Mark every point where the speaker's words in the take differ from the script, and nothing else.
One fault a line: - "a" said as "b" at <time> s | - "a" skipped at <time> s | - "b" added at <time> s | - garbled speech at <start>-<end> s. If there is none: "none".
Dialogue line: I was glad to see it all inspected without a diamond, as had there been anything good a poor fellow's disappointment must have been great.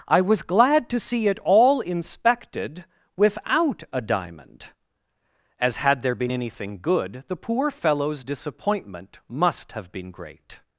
- "a" said as "the" at 7.3 s